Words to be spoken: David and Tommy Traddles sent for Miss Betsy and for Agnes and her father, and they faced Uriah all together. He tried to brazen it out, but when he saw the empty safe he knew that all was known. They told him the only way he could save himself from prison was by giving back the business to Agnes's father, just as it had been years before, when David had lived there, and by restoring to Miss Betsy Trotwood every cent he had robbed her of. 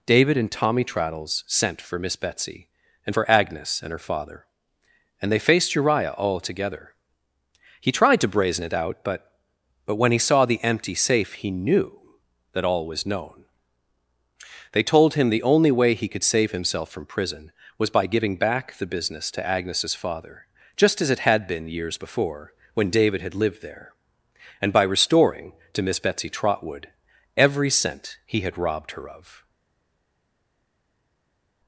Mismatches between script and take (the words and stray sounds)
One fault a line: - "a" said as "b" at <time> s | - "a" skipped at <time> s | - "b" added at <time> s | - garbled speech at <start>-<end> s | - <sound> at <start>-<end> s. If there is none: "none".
- "but" added at 9.9 s